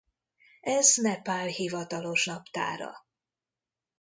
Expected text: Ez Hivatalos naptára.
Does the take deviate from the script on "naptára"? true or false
false